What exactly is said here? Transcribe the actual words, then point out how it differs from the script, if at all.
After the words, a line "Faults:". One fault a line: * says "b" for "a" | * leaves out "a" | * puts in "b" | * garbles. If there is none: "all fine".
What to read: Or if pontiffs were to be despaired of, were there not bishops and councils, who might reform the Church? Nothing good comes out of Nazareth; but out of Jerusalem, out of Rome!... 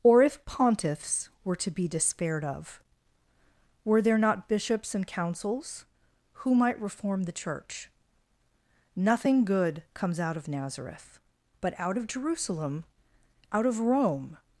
Or if pontiffs were to be despaired of, were there not bishops and councils, who might reform the Church? Nothing good comes out of Nazareth; but out of Jerusalem, out of Rome!...
Faults:
all fine